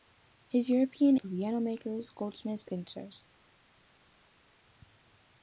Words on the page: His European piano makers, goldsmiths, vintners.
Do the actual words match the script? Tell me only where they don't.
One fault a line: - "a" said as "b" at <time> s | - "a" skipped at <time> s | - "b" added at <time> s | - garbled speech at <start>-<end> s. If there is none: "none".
none